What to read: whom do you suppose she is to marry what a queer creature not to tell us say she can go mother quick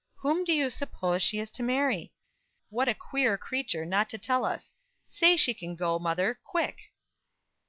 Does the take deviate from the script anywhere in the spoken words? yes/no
no